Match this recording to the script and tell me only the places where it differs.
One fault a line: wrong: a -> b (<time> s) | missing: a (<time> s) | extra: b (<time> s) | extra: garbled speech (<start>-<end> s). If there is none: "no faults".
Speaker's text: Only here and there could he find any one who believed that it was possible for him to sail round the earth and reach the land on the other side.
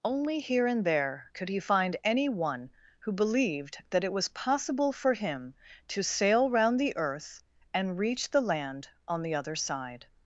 no faults